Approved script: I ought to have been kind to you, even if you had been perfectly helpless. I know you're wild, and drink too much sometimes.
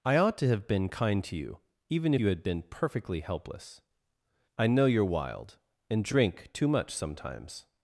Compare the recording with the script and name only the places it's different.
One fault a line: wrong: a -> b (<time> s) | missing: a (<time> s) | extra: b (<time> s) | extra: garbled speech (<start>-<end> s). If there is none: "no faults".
missing: if (2.1 s)